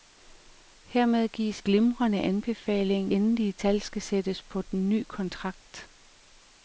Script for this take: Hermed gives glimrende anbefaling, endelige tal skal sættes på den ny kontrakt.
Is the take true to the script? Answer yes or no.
yes